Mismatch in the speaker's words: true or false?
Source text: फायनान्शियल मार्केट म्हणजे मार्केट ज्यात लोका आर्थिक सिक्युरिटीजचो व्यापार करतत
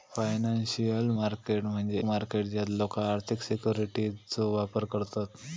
false